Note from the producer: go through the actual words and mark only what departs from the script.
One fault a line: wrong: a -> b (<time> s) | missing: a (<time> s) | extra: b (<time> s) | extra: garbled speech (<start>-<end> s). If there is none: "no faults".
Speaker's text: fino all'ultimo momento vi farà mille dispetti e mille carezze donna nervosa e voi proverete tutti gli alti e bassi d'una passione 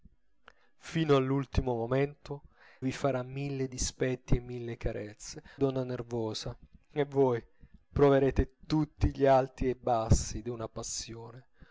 no faults